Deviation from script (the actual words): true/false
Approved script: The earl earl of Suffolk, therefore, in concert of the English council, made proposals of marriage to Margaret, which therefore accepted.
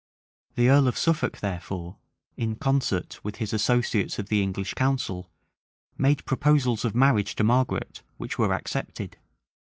true